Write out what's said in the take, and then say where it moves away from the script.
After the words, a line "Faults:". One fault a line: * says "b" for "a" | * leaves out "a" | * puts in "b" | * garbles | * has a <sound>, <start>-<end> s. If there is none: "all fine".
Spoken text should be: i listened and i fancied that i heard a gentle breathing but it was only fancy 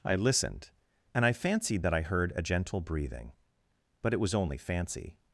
i listened and i fancied that i heard a gentle breathing but it was only fancy
Faults:
all fine